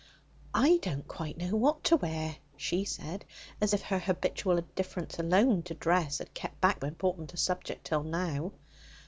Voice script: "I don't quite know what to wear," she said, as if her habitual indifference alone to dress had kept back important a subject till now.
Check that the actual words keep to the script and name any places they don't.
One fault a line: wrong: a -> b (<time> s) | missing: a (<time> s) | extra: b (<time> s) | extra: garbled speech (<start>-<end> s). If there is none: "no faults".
no faults